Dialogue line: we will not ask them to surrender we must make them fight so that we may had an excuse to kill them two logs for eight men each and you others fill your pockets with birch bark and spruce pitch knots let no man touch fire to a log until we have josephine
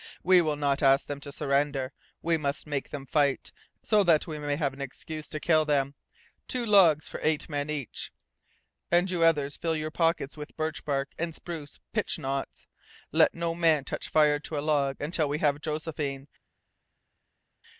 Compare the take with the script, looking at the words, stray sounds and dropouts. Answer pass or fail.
fail